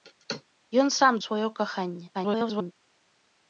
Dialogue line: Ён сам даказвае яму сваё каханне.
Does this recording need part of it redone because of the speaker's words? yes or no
yes